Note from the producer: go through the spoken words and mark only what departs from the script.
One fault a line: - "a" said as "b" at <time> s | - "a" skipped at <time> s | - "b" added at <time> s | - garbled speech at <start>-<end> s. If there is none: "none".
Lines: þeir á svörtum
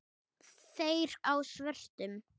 none